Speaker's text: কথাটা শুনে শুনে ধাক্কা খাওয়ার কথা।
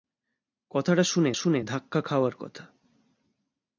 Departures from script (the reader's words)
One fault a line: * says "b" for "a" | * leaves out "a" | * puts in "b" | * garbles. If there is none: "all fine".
all fine